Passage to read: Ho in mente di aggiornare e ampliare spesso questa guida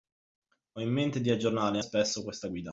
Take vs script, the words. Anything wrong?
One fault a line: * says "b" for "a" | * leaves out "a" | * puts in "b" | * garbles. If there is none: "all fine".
* leaves out "ampliare"